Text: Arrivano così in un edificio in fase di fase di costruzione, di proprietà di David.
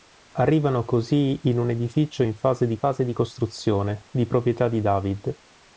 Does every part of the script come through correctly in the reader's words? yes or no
yes